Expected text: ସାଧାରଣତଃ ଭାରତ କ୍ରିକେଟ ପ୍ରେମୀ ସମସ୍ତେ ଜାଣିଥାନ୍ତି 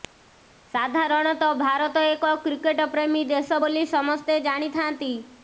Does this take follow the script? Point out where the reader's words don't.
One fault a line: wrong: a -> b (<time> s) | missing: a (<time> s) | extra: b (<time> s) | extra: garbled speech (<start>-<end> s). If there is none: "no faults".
extra: ଏକ (2.1 s)
extra: ଦେଶ ବୋଲି (3.3 s)